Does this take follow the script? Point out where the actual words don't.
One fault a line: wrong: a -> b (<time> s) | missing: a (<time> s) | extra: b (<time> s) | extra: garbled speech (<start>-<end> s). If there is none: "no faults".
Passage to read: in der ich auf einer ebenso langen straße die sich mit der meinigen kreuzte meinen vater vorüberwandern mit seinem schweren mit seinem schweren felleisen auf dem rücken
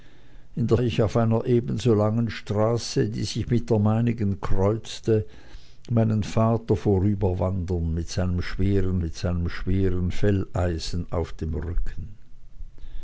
no faults